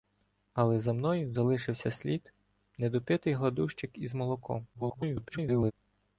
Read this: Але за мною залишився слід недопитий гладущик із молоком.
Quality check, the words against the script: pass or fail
fail